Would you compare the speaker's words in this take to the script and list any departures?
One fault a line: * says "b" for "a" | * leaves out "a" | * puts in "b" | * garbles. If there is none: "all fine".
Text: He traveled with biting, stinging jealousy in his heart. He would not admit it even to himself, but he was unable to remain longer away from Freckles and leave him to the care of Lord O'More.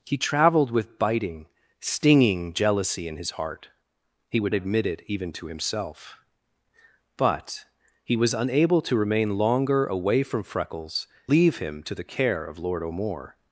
* leaves out "not"
* leaves out "and"